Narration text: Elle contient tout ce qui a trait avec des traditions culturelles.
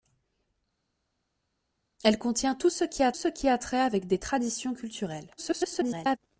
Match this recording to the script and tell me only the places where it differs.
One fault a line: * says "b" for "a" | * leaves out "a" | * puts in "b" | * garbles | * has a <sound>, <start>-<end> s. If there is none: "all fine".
* puts in "ce qui a"
* garbles